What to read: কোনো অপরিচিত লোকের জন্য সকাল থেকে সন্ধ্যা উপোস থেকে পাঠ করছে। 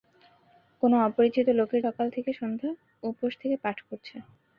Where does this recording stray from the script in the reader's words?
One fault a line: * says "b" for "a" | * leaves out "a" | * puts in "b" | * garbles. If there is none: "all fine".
* leaves out "জন্য"